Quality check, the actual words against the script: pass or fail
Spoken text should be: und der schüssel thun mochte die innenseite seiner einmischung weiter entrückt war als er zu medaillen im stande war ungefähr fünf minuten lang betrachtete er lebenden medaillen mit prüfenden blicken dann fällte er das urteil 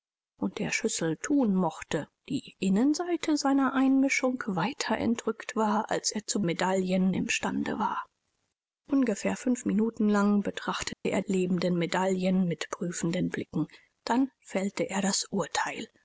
pass